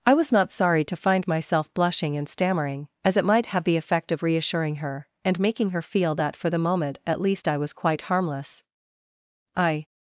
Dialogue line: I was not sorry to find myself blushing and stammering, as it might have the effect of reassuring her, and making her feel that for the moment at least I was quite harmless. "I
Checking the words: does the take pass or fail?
pass